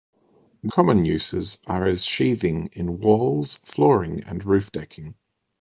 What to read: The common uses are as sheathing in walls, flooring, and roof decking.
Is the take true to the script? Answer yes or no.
yes